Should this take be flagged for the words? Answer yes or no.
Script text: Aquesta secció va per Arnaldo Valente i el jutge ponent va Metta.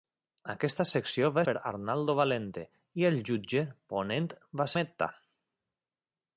no